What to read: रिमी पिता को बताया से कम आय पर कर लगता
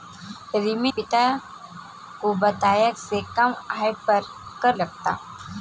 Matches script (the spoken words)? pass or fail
pass